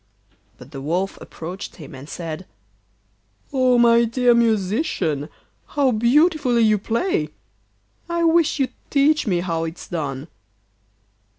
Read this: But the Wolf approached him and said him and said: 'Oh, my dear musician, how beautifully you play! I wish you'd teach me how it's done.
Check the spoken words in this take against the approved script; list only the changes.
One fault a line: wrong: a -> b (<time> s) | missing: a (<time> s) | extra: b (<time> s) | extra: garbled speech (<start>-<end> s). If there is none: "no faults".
missing: him and said (2.5 s)